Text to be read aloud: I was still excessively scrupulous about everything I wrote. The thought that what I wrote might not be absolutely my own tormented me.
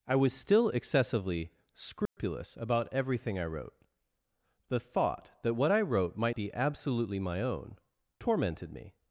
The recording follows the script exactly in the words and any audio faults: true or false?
false